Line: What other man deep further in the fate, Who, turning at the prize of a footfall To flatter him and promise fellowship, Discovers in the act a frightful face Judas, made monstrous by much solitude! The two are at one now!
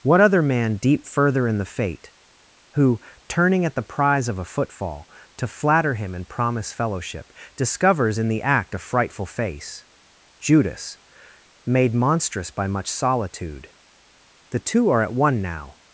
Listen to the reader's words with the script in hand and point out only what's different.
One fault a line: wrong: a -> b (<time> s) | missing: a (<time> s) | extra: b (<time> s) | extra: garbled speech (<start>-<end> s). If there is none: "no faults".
no faults